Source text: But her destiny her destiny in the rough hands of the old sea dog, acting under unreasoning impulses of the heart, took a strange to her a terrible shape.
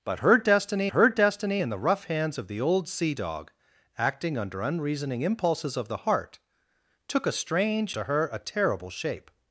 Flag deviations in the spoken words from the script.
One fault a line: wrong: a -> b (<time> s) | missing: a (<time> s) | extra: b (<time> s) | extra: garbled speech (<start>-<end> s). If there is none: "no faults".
no faults